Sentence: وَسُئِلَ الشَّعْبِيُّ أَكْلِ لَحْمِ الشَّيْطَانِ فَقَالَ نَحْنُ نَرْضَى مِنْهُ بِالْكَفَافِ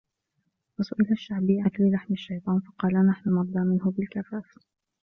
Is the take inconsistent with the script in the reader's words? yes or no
no